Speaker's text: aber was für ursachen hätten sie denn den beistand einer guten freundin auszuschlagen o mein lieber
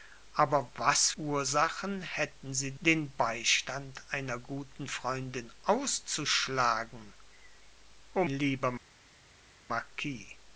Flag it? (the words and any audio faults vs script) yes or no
yes